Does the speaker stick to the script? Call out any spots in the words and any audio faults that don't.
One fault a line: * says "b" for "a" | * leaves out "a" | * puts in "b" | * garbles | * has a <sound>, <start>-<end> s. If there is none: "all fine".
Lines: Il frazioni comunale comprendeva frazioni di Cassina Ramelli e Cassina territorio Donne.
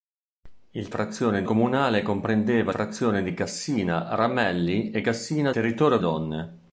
all fine